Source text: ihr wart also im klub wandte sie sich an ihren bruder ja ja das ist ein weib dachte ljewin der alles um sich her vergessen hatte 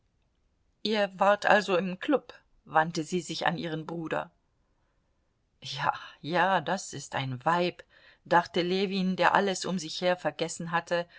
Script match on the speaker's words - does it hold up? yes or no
yes